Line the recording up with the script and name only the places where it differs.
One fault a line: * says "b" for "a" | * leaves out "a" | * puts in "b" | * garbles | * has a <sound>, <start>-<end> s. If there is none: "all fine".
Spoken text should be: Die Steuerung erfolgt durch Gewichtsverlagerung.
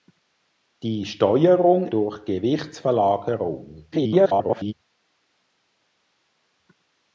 * leaves out "erfolgt"
* garbles